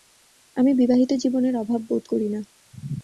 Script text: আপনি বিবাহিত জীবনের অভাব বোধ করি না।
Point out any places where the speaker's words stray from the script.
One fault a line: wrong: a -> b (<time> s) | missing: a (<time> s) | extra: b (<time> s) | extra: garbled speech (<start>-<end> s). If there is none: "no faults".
wrong: আপনি -> আমি (0.6 s)